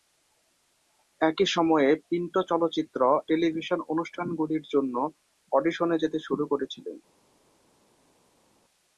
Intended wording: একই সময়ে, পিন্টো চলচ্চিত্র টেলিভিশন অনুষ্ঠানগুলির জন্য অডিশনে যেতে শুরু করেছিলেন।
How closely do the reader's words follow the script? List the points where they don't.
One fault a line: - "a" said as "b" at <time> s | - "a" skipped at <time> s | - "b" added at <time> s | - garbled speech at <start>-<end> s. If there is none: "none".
none